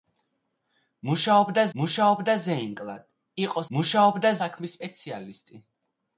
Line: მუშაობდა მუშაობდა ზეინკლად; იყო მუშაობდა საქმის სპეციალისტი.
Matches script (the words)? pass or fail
pass